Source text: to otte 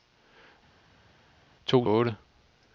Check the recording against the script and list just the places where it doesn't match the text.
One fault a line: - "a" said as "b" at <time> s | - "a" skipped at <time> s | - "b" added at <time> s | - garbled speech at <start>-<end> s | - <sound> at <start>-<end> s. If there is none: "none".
none